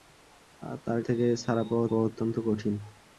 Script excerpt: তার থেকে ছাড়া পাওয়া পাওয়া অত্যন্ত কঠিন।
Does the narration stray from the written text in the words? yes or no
no